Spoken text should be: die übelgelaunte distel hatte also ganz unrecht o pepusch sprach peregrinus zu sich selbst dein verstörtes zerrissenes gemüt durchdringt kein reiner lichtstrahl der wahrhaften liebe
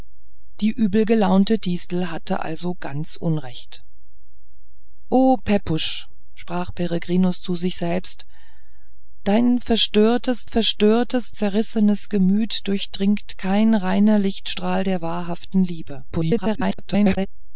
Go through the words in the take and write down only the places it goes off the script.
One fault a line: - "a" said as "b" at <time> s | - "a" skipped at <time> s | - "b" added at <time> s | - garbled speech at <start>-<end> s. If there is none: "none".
- "verstörtes" added at 10.4 s
- garbled speech at 16.1-17.3 s